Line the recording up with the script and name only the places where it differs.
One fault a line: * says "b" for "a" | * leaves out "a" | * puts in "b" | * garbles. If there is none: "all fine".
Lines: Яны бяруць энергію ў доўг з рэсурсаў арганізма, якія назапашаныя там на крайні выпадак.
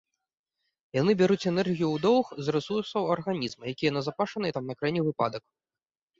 all fine